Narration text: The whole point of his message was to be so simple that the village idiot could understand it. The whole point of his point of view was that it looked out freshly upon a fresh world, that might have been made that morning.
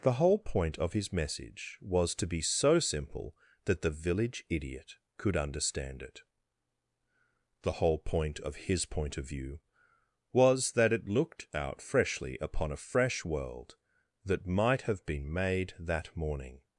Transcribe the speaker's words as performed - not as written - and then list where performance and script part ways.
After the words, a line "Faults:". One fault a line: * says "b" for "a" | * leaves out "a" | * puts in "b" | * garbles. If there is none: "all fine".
The whole point of his message was to be so simple that the village idiot could understand it. The whole point of his point of view was that it looked out freshly upon a fresh world, that might have been made that morning.
Faults:
all fine